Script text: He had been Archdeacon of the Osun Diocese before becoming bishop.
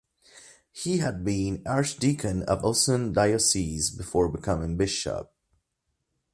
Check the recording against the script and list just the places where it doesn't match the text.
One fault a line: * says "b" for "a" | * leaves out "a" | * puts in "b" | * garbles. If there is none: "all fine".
* leaves out "the"